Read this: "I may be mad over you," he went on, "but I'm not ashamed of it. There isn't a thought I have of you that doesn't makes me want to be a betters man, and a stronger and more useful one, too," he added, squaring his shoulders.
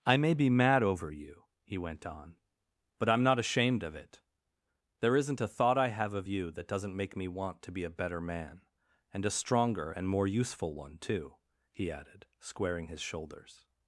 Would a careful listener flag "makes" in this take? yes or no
yes